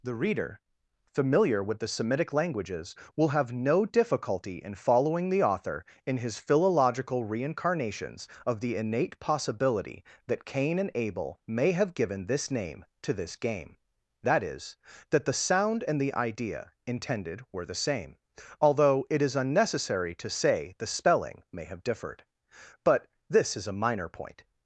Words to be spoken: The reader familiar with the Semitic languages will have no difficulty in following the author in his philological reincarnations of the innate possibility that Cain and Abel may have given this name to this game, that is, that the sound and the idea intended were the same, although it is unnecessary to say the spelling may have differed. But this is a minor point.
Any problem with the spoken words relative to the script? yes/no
no